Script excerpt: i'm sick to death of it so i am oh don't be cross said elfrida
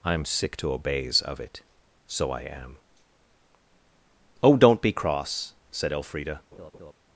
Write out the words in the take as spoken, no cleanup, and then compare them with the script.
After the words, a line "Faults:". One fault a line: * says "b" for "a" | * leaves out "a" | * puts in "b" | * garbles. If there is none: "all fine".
i'm sick to obeys of it so i am oh don't be cross said elfrida
Faults:
* says "obeys" for "death"